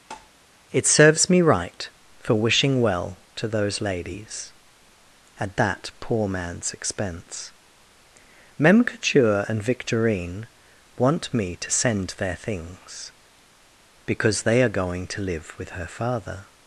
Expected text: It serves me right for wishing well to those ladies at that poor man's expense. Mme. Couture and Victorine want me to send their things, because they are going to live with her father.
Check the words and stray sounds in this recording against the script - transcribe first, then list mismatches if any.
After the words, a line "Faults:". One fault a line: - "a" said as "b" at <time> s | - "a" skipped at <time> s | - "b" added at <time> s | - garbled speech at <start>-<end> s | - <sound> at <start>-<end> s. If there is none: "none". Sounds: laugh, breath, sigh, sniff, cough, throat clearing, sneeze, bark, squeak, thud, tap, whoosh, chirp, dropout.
It serves me right for wishing well to those ladies at that poor man's expense. Mem. Couture and Victorine want me to send their things, because they are going to live with her father.
Faults:
- tap at 0.1-0.3 s
- "Mme" said as "Mem" at 8.6 s